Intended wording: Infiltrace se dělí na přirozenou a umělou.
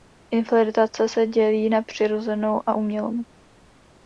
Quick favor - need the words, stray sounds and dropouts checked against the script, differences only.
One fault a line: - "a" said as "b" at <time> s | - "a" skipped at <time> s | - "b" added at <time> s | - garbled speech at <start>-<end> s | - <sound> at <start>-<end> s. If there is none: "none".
none